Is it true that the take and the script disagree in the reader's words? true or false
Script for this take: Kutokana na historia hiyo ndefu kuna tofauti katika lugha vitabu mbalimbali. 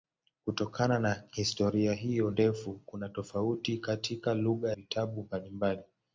false